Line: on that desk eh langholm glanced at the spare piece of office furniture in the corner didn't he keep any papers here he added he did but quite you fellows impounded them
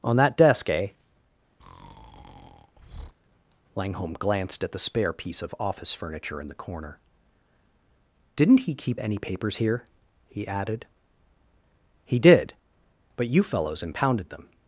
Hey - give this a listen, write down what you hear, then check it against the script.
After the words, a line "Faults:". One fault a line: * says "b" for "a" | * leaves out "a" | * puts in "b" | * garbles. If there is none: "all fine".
on that desk eh langholm glanced at the spare piece of office furniture in the corner didn't he keep any papers here he added he did but you fellows impounded them
Faults:
* leaves out "quite"